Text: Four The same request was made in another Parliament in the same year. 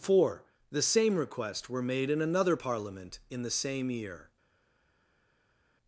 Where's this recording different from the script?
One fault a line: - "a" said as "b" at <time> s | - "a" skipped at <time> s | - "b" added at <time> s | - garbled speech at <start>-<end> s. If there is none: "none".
- "was" said as "were" at 1.7 s